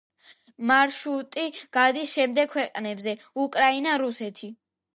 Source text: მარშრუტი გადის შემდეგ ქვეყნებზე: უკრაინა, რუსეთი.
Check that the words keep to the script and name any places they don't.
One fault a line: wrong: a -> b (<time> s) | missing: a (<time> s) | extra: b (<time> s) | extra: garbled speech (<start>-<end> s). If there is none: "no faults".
no faults